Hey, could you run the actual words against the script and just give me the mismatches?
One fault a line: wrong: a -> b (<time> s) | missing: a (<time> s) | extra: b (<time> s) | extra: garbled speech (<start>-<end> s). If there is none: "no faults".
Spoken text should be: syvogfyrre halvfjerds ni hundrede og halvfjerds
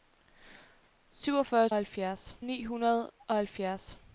no faults